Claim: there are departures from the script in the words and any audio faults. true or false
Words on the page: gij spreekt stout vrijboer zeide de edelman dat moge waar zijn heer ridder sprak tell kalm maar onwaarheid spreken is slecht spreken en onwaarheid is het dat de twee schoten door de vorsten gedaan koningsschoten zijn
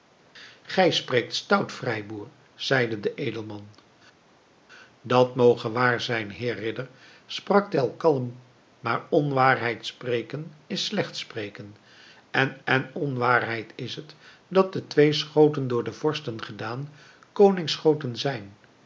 true